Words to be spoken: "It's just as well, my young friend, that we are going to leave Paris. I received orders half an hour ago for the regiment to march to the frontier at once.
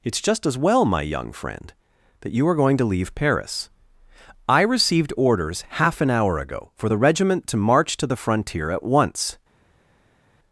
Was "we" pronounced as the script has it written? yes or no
no